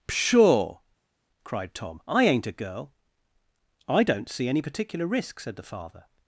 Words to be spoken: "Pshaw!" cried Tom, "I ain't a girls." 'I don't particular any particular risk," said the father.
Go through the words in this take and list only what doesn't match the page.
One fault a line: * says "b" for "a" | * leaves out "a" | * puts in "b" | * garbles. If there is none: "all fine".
* says "girl" for "girls"
* says "see" for "particular"